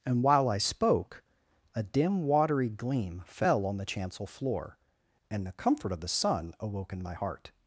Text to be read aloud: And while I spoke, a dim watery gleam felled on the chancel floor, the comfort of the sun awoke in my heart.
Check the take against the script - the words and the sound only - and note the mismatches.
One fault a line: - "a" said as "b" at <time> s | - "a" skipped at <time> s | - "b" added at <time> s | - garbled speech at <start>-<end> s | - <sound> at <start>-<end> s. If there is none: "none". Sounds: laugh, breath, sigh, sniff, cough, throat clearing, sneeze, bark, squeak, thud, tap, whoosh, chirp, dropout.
- "felled" said as "fell" at 3.2 s
- "and" added at 5.3 s